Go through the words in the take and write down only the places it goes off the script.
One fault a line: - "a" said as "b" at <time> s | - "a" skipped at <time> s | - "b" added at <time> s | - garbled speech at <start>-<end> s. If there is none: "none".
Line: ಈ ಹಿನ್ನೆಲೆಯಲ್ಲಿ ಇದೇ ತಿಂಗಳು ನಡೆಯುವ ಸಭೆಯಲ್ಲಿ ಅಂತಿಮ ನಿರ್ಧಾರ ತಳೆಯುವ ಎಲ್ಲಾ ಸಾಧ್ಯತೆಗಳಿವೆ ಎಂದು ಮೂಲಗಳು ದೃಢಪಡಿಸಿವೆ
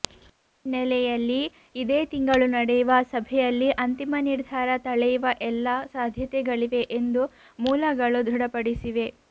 none